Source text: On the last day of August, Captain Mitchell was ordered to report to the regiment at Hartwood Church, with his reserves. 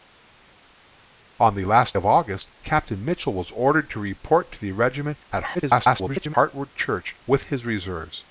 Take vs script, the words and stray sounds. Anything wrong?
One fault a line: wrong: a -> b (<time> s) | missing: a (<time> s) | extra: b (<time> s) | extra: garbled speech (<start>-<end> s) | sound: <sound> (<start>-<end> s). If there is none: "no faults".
missing: day (2.0 s)
extra: garbled speech (5.5-6.3 s)